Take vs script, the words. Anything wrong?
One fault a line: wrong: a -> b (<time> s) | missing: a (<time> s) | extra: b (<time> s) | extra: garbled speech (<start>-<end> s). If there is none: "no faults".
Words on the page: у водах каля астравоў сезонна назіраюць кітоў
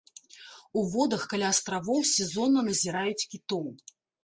no faults